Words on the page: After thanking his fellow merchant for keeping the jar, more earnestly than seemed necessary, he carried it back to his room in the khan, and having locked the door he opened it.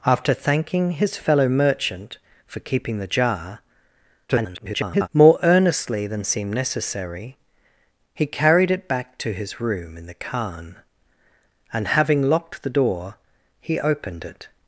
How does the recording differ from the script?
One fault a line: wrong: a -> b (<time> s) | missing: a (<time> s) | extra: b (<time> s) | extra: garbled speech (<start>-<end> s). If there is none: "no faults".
extra: garbled speech (4.3-5.1 s)